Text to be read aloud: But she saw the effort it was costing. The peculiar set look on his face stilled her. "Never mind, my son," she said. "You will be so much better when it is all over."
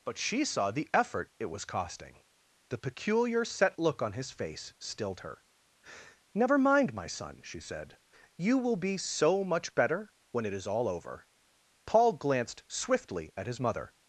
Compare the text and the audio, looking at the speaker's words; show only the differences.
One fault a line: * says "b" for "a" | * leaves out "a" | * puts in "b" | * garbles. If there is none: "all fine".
* puts in "Paul glanced swiftly at his mother"